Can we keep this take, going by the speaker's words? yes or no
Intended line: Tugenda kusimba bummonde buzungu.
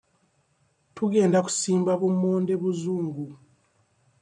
yes